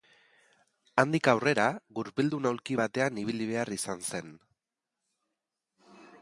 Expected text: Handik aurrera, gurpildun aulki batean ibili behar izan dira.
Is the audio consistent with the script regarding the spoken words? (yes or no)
no